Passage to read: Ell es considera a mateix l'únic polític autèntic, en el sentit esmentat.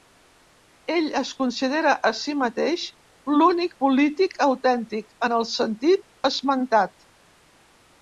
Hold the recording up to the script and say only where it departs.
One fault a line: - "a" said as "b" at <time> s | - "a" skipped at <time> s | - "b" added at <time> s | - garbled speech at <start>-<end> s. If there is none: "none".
- "si" added at 2.2 s